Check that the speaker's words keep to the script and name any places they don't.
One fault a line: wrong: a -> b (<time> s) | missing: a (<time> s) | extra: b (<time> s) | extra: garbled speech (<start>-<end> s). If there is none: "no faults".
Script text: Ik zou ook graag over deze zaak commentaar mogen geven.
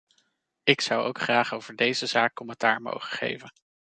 no faults